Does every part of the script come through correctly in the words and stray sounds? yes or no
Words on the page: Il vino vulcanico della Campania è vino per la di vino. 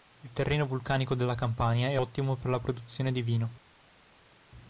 no